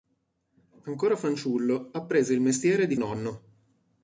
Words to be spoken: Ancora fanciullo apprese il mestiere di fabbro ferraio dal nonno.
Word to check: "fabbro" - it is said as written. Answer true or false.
false